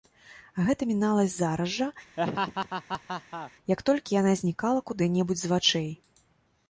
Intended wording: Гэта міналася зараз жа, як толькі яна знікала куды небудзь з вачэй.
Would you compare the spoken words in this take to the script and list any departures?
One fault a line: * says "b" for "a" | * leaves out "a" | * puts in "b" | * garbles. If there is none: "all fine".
all fine